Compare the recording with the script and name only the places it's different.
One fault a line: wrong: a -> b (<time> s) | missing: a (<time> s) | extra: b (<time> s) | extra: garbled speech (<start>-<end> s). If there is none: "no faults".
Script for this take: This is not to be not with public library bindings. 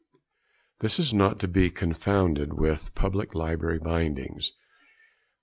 wrong: not -> confounded (1.7 s)